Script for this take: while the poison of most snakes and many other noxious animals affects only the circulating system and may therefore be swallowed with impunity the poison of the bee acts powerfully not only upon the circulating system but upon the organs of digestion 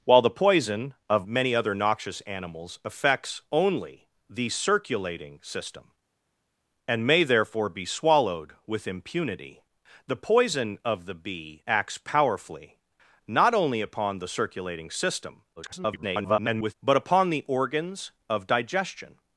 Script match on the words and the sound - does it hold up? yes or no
no